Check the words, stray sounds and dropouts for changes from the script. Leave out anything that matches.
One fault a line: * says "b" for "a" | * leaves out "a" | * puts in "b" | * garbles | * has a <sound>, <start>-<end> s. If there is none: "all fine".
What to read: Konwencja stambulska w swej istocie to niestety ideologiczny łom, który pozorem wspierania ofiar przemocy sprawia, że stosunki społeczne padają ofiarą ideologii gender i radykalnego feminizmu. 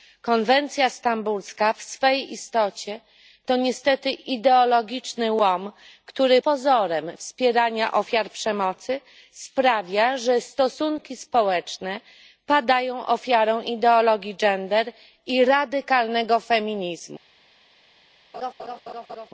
* has a laugh, 18.3-19.3 s